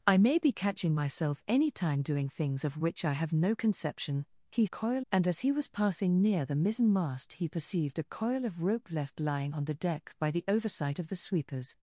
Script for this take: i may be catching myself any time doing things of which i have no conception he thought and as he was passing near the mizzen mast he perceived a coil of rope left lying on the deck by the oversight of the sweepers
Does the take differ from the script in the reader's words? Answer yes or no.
yes